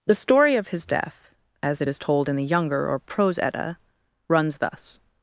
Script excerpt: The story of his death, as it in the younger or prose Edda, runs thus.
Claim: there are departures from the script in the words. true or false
true